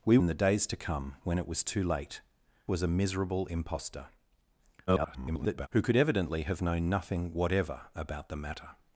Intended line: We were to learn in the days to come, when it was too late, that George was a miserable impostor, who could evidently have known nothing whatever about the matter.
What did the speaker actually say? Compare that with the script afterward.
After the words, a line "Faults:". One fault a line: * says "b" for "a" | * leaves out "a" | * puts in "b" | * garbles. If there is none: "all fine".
We in the days to come, when it was too late, was a miserable impostor, [garbled] who could evidently have known nothing whatever about the matter.
Faults:
* leaves out "were to learn"
* leaves out "that George"
* garbles